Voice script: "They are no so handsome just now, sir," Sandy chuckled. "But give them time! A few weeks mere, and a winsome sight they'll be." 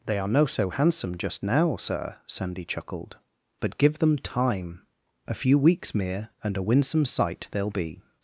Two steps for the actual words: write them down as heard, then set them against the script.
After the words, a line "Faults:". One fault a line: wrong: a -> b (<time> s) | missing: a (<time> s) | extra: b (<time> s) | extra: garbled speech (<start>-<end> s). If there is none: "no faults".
"They are no so handsome just now, sir," Sandy chuckled. "But give them time! A few weeks mere, and a winsome sight they'll be."
Faults:
no faults